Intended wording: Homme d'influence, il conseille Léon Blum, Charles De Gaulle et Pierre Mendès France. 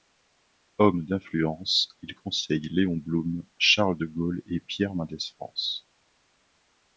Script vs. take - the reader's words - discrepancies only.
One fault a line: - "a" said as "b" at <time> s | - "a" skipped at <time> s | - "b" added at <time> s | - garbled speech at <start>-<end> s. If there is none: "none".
none